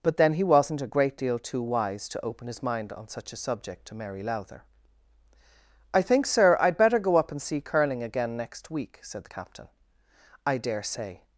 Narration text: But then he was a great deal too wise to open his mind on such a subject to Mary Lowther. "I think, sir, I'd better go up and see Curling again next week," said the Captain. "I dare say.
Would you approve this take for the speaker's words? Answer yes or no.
no